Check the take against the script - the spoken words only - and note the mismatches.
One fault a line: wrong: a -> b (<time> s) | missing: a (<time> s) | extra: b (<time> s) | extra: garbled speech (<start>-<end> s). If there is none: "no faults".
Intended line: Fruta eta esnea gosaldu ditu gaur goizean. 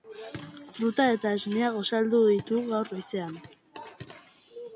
no faults